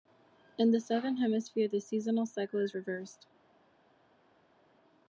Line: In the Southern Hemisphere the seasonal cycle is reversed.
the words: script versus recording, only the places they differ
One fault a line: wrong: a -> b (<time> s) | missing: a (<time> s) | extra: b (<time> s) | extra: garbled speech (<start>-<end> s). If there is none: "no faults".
no faults